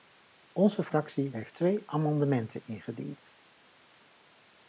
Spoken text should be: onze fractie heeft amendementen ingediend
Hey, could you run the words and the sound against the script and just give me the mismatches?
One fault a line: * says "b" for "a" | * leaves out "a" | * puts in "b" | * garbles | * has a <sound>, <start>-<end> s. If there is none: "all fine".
* puts in "twee"